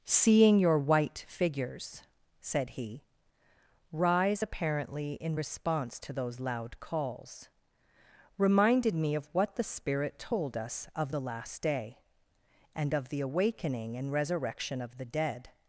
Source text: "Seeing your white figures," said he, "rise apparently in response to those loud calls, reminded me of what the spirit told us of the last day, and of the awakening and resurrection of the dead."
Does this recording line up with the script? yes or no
yes